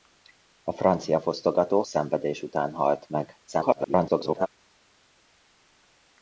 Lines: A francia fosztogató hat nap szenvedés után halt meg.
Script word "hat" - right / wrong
wrong